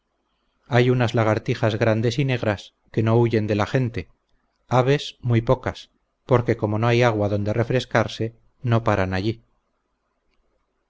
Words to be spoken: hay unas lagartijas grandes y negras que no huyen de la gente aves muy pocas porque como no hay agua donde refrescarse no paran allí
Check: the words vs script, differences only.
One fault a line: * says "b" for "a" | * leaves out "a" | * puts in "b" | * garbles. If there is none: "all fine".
all fine